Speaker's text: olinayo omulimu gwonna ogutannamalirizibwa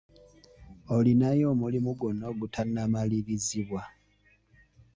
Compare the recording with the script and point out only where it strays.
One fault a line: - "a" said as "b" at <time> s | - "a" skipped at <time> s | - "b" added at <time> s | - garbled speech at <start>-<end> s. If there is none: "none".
none